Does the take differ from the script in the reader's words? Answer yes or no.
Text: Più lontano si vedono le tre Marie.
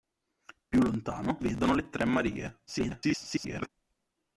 yes